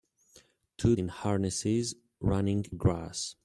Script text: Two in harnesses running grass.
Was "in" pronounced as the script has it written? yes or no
yes